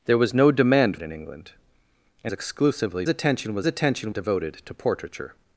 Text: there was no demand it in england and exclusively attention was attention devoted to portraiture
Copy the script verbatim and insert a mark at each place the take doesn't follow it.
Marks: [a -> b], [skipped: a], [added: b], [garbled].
there was no demand it in england and exclusively attention was attention devoted to portraiture